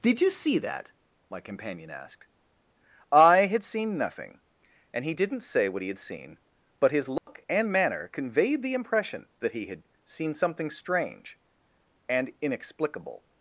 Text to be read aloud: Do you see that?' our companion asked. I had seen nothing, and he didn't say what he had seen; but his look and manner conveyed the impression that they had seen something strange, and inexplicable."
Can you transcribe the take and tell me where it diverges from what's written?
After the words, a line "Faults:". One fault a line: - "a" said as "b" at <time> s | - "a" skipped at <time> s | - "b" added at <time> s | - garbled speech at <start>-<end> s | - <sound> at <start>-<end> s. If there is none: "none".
Did you see that?' my companion asked. I had seen nothing, and he didn't say what he had seen; but his look and manner conveyed the impression that he had seen something strange, and inexplicable."
Faults:
- "Do" said as "Did" at 0.0 s
- "our" said as "my" at 1.3 s
- dropout at 7.2-7.3 s
- "they" said as "he" at 9.5 s